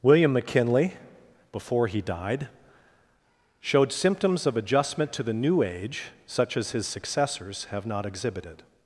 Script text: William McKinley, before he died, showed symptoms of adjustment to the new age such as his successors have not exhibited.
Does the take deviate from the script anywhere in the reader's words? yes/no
no